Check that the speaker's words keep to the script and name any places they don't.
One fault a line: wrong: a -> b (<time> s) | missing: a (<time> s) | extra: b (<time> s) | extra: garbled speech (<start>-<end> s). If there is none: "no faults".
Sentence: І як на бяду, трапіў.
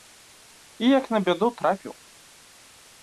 no faults